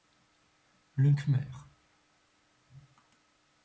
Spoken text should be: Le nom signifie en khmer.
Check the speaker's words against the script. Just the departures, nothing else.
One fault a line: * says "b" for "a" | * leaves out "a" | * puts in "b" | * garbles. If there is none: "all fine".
* leaves out "nom signifie en"